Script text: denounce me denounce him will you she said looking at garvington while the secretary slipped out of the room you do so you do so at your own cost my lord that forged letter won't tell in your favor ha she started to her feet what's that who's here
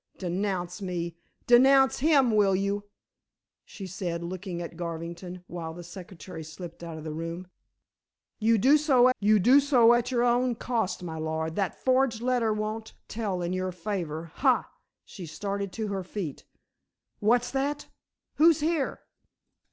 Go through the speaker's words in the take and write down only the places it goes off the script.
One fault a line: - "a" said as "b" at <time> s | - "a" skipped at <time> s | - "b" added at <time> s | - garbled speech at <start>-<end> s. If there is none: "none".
none